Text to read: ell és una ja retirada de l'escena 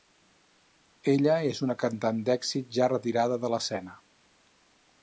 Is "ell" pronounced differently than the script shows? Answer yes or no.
yes